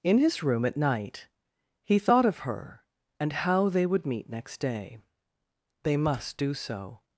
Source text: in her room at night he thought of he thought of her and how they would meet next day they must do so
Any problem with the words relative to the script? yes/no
yes